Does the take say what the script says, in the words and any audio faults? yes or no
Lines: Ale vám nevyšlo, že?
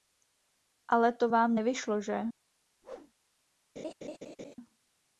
no